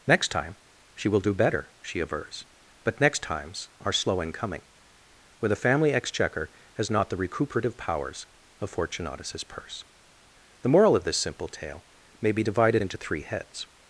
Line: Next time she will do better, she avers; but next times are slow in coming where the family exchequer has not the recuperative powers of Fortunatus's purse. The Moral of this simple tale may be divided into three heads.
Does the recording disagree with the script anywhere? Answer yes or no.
no